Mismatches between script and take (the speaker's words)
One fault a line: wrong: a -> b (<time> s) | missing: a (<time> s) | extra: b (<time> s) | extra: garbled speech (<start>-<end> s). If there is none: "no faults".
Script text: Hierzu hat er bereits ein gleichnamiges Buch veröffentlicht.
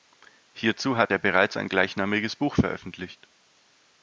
no faults